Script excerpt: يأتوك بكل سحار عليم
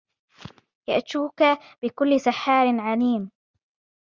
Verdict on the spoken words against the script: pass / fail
pass